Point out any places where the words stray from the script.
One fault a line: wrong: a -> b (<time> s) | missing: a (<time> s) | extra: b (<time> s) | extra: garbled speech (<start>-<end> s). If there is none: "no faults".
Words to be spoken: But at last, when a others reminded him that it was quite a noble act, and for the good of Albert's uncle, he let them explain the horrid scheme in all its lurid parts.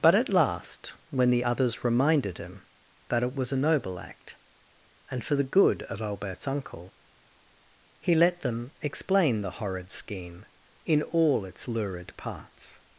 wrong: a -> the (1.3 s)
missing: quite (3.5 s)